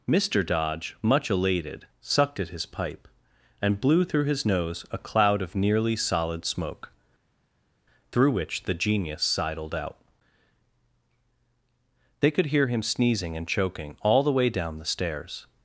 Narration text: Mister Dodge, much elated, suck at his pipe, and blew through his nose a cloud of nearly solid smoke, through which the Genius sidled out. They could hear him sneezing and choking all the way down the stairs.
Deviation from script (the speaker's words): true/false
true